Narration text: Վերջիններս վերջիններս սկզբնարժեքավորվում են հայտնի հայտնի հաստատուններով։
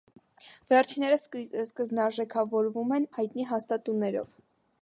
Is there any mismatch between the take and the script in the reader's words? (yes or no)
yes